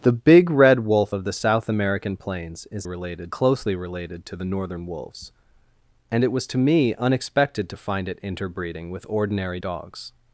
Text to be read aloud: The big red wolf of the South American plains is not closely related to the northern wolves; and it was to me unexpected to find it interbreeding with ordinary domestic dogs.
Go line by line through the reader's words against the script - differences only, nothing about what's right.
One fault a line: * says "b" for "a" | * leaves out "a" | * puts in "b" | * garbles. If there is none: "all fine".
* says "related" for "not"
* leaves out "domestic"